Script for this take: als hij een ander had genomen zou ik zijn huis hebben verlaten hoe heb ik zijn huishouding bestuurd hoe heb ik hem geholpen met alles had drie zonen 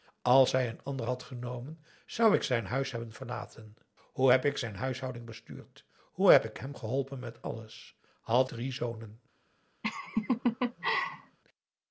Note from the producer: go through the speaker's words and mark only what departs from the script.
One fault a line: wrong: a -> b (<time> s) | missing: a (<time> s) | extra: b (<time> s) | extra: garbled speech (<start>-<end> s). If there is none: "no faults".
no faults